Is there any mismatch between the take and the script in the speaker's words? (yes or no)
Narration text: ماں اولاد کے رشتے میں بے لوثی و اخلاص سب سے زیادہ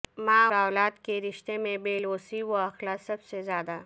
no